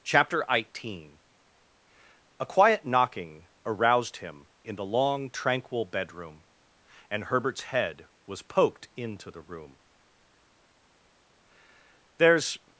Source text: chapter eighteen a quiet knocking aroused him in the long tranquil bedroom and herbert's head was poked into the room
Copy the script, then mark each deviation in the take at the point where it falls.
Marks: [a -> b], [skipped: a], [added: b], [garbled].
chapter eighteen a quiet knocking aroused him in the long tranquil bedroom and herbert's head was poked into the room [added: there's]